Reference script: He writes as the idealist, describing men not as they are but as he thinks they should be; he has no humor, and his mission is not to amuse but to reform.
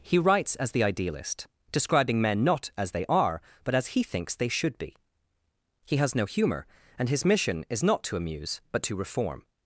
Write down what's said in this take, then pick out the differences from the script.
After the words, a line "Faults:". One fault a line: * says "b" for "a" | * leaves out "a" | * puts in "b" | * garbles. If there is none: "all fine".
He writes as the idealist, describing men not as they are but as he thinks they should be; he has no humor, and his mission is not to amuse but to reform.
Faults:
all fine